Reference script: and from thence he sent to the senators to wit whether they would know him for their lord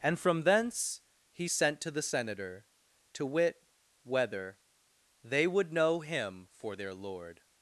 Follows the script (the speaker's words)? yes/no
no